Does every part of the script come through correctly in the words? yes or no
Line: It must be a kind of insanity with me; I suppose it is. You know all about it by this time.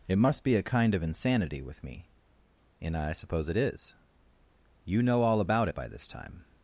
no